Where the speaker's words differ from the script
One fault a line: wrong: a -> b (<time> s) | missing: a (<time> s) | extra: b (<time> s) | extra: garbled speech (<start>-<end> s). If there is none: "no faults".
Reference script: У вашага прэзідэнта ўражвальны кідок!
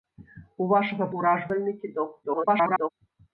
missing: прэзідэнта (1.1 s)
extra: garbled speech (2.2-2.9 s)